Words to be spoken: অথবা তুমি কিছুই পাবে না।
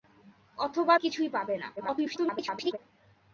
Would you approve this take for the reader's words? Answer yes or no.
no